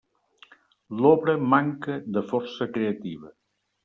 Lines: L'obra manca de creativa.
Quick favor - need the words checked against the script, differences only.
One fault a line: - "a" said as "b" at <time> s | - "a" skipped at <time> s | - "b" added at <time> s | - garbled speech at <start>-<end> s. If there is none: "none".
- "força" added at 2.3 s